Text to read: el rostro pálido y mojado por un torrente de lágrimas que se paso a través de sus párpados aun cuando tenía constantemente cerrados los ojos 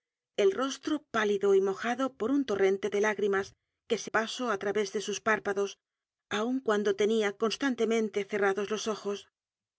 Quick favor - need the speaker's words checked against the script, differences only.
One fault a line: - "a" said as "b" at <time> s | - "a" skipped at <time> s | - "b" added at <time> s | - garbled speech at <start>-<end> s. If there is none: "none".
none